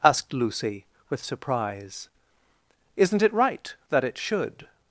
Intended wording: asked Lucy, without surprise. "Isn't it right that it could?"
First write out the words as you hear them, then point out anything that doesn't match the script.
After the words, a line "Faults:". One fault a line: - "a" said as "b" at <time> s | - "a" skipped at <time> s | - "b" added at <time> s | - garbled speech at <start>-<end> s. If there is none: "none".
asked Lucy, with surprise. "Isn't it right that it should?"
Faults:
- "without" said as "with" at 1.1 s
- "could" said as "should" at 4.2 s